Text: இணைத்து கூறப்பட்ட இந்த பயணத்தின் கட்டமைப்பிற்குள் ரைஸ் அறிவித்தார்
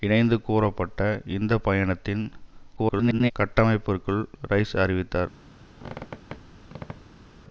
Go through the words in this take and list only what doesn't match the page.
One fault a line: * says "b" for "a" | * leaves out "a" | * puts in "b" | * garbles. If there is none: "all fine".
* garbles